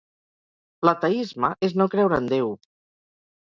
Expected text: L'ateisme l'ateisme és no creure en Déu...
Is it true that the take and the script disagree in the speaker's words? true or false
true